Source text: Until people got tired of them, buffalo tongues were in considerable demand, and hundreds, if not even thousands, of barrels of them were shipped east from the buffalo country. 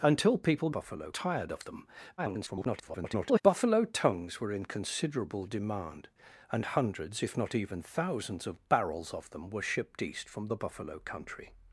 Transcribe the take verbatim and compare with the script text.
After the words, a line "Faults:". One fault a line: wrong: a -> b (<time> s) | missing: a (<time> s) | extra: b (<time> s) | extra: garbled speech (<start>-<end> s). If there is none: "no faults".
Until people buffalo tired of them, [garbled] buffalo tongues were in considerable demand, and hundreds, if not even thousands, of barrels of them were shipped east from the buffalo country.
Faults:
wrong: got -> buffalo (0.7 s)
extra: garbled speech (2.2-3.4 s)